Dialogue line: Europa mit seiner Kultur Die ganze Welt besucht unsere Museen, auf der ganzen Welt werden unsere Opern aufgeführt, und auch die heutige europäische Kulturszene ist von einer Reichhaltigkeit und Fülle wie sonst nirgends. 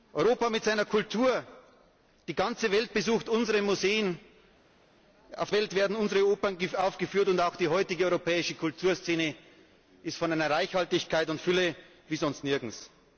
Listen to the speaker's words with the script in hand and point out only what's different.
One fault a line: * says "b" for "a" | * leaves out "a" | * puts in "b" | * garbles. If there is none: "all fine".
* leaves out "der ganzen"